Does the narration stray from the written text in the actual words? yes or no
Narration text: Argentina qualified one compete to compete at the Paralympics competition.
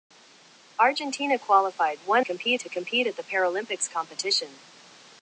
no